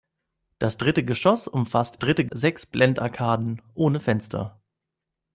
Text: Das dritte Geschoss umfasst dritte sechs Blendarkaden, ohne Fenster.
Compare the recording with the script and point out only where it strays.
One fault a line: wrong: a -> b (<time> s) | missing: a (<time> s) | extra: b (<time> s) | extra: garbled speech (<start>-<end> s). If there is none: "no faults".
no faults